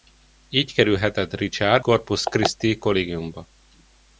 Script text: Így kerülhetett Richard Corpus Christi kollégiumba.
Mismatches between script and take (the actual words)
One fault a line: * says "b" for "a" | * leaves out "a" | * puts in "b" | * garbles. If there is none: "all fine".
all fine